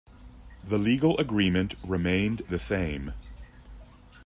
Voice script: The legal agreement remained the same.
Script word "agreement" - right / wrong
right